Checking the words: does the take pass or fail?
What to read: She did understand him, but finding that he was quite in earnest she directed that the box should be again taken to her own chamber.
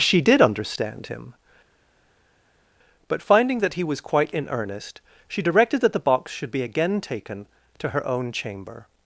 pass